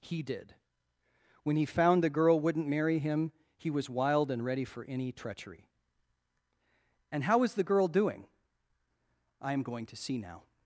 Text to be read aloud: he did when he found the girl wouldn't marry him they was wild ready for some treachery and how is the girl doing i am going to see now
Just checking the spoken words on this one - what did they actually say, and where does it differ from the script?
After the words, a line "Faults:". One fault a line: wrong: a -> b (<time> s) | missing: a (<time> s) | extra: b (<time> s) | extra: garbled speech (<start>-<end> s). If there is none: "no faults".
he did when he found the girl wouldn't marry him he was wild and ready for any treachery and how is the girl doing i am going to see now
Faults:
wrong: they -> he (3.6 s)
extra: and (4.3 s)
wrong: some -> any (4.8 s)